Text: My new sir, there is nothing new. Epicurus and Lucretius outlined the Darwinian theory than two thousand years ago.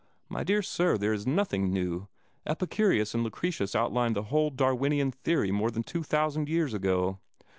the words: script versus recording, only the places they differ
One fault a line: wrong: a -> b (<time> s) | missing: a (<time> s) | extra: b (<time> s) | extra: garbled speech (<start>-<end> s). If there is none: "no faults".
wrong: new -> dear (0.4 s)
extra: whole (4.2 s)
extra: more (5.5 s)